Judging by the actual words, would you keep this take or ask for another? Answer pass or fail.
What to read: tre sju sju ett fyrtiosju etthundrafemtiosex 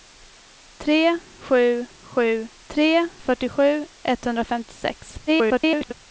fail